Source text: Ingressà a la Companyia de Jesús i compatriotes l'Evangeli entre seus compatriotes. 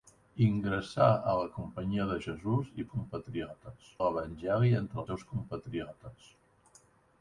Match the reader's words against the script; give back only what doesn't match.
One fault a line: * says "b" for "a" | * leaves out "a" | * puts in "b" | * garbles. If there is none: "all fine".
all fine